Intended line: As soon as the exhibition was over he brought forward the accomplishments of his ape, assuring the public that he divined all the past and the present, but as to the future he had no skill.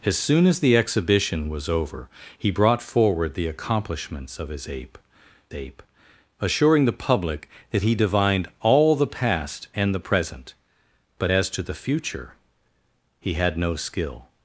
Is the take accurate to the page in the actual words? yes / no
no